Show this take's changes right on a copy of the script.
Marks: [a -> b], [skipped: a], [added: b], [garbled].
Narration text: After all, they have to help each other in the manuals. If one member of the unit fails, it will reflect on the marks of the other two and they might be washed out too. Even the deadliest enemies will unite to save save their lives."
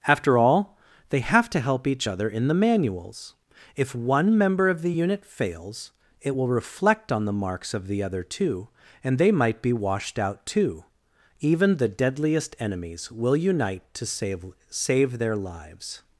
After all, they have to help each other in the manuals. If one member of the unit fails, it will reflect on the marks of the other two and they might be washed out too. Even the deadliest enemies will unite to save save their lives."